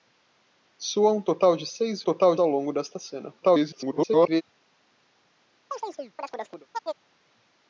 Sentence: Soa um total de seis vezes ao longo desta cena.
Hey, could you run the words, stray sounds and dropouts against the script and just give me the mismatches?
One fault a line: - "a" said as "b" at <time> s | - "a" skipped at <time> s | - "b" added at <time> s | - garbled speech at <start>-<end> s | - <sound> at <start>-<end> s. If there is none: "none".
- "vezes" said as "total" at 2.0 s
- garbled speech at 3.4-4.4 s
- chirp at 5.7-7.1 s